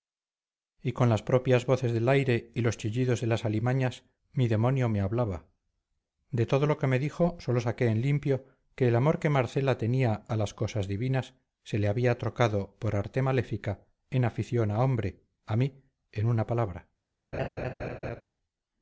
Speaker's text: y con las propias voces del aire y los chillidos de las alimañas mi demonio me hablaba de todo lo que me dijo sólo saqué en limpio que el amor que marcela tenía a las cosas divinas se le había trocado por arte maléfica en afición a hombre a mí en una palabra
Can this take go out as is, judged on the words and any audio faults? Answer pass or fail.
fail